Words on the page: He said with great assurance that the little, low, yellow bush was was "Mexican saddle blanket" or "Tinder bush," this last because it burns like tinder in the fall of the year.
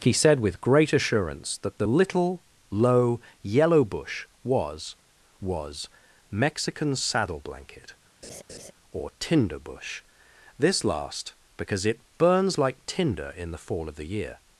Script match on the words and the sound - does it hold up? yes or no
no